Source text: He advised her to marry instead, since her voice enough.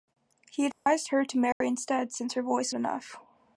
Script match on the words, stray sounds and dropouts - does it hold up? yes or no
no